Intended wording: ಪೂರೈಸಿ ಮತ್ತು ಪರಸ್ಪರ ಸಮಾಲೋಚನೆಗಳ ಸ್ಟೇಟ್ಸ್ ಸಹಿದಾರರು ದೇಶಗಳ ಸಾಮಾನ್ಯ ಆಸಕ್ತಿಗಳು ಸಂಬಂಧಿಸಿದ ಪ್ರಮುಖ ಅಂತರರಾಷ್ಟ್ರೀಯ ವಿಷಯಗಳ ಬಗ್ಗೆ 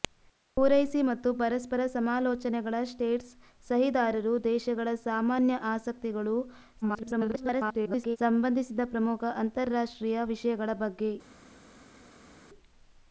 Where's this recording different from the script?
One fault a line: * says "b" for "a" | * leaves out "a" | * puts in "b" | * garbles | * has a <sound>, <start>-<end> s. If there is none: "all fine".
* garbles